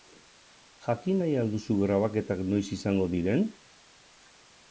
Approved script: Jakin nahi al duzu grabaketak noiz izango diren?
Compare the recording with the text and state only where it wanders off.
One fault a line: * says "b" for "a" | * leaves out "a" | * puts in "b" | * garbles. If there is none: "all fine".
all fine